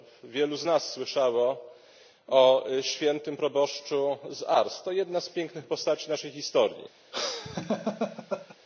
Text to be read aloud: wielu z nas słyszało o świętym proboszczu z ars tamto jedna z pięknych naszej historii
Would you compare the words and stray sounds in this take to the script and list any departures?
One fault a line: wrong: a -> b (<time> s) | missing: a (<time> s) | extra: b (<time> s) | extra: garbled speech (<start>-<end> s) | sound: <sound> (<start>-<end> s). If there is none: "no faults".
wrong: tamto -> to (4.8 s)
extra: postaci (5.7 s)
sound: laugh (7.1-8.6 s)